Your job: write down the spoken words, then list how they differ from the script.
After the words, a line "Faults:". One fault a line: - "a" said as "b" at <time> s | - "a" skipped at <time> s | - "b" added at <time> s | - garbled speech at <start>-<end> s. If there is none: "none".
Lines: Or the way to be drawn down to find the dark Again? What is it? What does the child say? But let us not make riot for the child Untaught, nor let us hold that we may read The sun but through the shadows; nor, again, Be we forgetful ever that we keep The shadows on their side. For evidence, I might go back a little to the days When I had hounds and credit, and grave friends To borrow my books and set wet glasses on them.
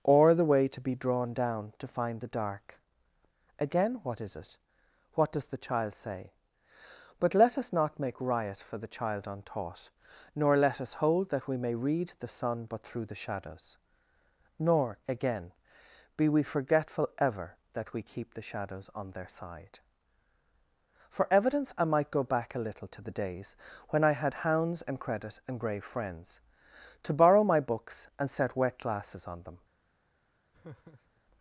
Or the way to be drawn down to find the dark Again? What is it? What does the child say? But let us not make riot for the child Untaught, nor let us hold that we may read The sun but through the shadows; nor, again, Be we forgetful ever that we keep The shadows on their side. For evidence, I might go back a little to the days When I had hounds and credit, and grave friends To borrow my books and set wet glasses on them.
Faults:
none